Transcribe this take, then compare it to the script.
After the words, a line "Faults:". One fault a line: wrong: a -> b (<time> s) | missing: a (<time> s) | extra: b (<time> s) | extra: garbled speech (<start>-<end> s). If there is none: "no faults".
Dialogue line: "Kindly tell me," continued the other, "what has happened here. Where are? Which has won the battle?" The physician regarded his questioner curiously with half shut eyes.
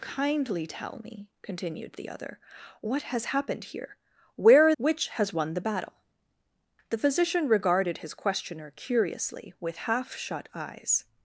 "Kindly tell me," continued the other, "what has happened here. Where are? Which has won the battle?" The physician regarded his questioner curiously with half shut eyes.
Faults:
no faults